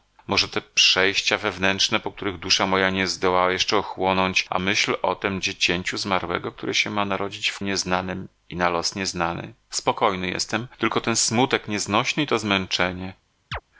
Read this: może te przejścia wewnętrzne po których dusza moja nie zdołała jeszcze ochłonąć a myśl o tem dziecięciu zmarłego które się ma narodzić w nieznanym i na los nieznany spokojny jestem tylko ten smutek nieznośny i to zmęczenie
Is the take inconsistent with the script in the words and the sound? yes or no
yes